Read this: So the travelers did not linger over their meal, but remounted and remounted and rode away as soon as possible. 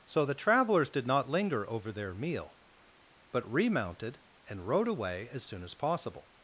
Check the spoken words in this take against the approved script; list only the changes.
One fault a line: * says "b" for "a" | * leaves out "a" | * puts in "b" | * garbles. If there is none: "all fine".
* leaves out "remounted and"